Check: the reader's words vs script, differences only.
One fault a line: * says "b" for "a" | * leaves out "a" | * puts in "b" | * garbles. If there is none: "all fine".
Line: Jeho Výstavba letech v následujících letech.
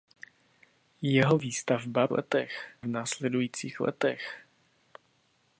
all fine